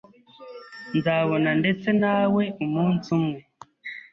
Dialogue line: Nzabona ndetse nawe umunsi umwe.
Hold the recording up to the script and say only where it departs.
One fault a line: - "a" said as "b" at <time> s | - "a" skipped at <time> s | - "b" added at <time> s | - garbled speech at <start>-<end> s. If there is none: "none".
none